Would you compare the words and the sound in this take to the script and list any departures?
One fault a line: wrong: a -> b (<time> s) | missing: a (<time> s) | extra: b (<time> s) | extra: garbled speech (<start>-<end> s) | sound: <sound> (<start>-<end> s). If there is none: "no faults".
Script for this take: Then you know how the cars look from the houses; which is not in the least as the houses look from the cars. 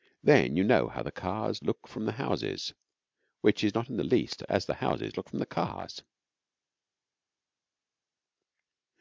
no faults